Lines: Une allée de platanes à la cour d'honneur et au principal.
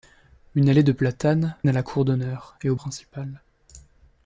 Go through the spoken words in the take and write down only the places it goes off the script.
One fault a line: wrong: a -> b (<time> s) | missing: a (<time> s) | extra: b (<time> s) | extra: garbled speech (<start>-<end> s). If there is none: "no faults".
no faults